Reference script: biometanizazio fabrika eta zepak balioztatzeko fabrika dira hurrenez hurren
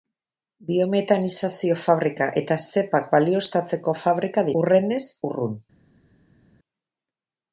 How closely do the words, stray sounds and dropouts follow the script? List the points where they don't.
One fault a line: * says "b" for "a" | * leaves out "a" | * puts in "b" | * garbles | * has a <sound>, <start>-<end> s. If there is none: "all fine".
* leaves out "dira"